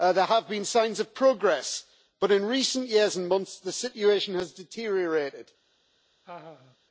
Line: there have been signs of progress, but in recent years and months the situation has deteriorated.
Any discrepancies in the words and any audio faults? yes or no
yes